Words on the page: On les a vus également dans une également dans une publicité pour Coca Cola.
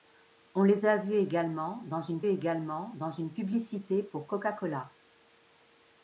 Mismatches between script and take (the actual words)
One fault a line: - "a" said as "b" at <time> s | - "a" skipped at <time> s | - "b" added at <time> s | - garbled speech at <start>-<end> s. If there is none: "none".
none